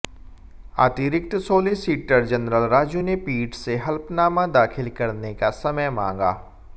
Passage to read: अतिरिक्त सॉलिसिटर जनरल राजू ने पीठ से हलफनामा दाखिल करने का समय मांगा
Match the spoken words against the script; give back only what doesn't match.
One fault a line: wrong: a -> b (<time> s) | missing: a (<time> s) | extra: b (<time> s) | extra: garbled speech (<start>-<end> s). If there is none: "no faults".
no faults